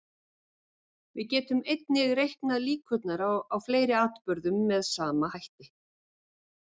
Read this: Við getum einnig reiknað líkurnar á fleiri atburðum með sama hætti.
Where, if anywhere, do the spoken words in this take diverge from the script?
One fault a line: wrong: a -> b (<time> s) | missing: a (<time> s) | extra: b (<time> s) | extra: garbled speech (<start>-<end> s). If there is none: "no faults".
no faults